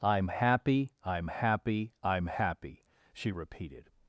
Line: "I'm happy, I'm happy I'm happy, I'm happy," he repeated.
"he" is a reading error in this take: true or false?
true